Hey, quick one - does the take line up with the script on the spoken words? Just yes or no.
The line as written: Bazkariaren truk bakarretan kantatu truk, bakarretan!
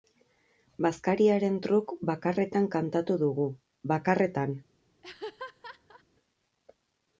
no